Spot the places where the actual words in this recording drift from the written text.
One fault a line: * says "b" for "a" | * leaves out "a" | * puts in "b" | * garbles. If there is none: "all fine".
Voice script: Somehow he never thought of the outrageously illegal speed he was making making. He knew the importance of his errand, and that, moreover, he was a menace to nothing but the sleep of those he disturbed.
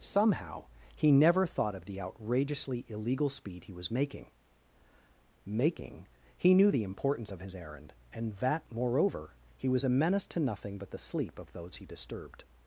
all fine